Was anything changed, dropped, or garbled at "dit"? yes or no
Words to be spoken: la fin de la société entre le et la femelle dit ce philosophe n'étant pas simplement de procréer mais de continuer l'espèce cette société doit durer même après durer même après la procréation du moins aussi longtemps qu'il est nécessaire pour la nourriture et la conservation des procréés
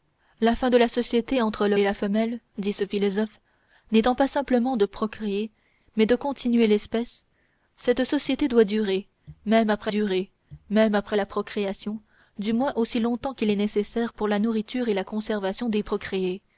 no